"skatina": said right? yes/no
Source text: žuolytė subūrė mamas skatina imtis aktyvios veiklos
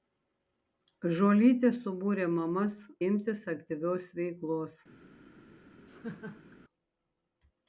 no